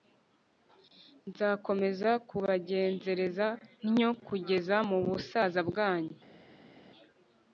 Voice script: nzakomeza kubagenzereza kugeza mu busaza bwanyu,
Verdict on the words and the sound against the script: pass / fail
fail